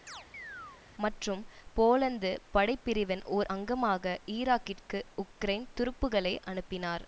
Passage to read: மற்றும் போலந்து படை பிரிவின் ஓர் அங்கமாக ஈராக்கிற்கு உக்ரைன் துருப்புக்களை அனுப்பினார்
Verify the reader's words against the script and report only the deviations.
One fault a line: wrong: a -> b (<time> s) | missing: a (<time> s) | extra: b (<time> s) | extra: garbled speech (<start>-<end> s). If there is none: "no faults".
no faults